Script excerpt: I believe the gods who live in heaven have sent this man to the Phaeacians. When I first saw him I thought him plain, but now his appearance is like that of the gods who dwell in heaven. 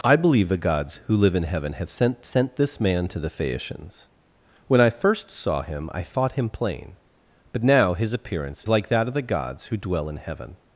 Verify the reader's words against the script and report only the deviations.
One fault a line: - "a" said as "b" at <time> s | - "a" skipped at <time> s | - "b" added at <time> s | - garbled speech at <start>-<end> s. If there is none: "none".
- "sent" added at 2.3 s
- "is" skipped at 8.6 s